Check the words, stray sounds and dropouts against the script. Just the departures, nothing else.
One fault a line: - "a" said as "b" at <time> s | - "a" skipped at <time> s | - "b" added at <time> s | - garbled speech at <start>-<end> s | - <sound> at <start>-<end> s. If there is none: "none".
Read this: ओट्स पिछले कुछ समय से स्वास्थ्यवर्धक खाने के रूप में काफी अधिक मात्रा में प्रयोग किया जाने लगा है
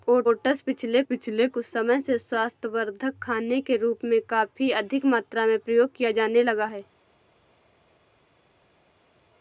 - "पिछले" added at 1.0 s